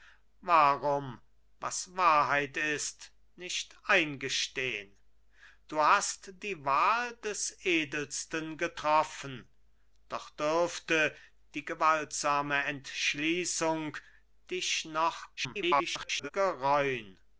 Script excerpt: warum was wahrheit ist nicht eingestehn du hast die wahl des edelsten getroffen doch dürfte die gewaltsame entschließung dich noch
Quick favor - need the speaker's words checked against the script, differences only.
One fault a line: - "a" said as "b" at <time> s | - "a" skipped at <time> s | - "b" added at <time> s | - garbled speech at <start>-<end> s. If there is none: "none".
- garbled speech at 15.4-16.3 s